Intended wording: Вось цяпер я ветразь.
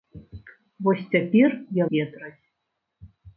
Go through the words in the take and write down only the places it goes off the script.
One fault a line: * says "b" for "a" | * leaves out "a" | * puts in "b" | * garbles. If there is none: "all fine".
all fine